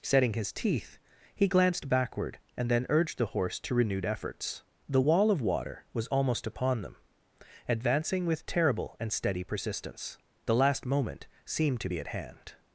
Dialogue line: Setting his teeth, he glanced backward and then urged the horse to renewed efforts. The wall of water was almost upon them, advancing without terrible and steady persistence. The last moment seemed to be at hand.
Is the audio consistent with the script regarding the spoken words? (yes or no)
no